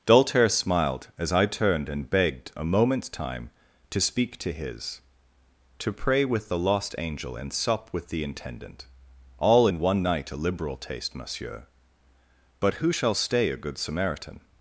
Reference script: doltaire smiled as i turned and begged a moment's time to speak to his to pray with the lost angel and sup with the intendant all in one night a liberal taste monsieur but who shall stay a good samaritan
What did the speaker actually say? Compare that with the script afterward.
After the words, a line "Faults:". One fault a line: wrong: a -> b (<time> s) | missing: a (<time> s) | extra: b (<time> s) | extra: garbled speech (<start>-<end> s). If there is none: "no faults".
doltaire smiled as i turned and begged a moment's time to speak to his to pray with the lost angel and sup with the intendant all in one night a liberal taste monsieur but who shall stay a good samaritan
Faults:
no faults